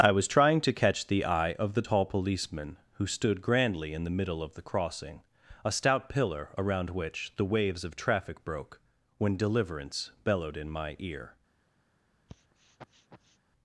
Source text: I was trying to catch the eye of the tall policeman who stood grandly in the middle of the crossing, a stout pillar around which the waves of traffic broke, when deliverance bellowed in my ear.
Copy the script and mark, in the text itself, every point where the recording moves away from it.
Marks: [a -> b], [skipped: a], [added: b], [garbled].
I was trying to catch the eye of the tall policeman who stood grandly in the middle of the crossing, a stout pillar around which the waves of traffic broke, when deliverance bellowed in my ear.